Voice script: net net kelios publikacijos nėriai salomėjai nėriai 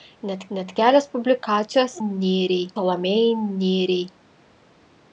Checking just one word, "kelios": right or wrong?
right